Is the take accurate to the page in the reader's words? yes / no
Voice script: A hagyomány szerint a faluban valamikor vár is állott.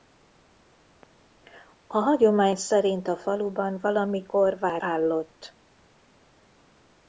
no